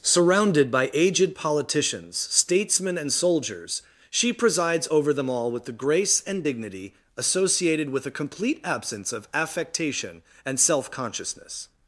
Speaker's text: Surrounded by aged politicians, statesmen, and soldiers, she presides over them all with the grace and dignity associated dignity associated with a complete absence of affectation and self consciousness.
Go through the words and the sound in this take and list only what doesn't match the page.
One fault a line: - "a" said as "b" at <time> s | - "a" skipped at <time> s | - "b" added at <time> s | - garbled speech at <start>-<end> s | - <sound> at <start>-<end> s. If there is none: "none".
- "dignity associated" skipped at 7.9 s